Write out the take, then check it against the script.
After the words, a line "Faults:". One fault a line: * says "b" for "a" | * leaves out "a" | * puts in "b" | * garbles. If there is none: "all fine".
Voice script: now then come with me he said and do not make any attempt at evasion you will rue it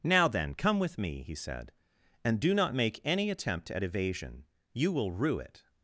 now then come with me he said and do not make any attempt at evasion you will rue it
Faults:
all fine